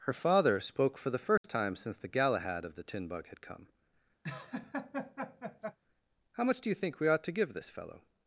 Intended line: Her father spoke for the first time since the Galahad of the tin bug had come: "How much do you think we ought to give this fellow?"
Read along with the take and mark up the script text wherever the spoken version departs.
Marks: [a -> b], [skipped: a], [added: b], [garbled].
Her father spoke for the first time since the Galahad of the tin bug had come: "How much do you think we ought to give this fellow?"